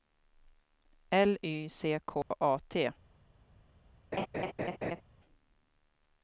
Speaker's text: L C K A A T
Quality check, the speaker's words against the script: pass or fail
fail